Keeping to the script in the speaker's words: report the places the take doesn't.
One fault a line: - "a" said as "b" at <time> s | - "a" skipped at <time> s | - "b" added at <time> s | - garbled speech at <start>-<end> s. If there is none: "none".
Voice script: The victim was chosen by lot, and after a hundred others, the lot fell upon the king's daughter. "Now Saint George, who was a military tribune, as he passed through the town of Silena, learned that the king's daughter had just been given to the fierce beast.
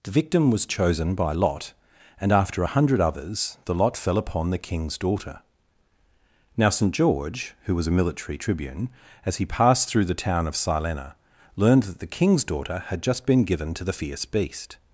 none